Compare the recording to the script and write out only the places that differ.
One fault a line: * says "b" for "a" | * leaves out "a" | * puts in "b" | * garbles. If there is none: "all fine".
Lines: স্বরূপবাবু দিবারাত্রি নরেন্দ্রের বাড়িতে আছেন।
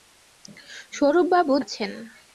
* leaves out "দিবারাত্রি নরেন্দ্রের বাড়িতে"